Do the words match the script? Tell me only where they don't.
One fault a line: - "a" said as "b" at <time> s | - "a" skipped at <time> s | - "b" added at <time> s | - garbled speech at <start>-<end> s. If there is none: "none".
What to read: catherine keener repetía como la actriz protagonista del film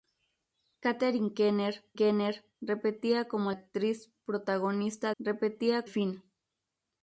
- "keener" added at 2.0 s
- "la" skipped at 3.5 s
- "del" said as "repetía" at 5.2 s